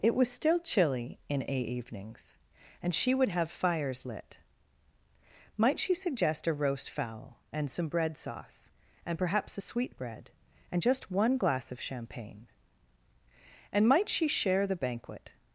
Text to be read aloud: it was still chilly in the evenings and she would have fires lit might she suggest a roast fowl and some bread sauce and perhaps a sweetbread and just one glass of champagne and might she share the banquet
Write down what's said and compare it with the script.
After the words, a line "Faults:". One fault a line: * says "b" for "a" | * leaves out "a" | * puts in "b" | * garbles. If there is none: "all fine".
it was still chilly in a evenings and she would have fires lit might she suggest a roast fowl and some bread sauce and perhaps a sweetbread and just one glass of champagne and might she share the banquet
Faults:
* says "a" for "the"